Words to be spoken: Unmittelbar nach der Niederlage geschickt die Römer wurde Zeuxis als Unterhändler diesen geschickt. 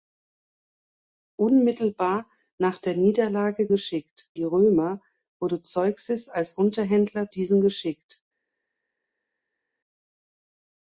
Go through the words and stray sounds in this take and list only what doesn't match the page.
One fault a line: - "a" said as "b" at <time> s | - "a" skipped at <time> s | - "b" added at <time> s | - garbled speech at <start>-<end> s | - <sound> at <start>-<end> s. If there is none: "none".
none